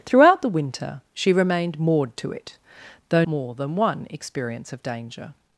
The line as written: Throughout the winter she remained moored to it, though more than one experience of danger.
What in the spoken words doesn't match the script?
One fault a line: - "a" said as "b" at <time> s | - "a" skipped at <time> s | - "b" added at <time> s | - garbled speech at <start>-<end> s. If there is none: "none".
none